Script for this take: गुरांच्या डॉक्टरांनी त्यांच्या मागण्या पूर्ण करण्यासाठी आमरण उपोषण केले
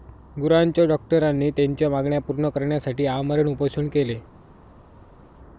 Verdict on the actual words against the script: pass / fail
pass